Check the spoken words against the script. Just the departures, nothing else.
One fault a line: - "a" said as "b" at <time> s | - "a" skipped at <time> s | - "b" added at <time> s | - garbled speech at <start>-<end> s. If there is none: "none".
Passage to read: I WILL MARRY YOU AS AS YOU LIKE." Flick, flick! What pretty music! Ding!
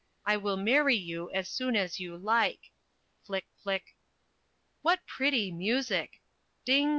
- "SOON" added at 1.5 s